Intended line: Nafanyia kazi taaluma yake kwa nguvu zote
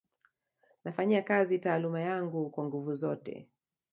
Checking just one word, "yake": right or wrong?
wrong